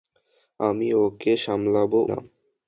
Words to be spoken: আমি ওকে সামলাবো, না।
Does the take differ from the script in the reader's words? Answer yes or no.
no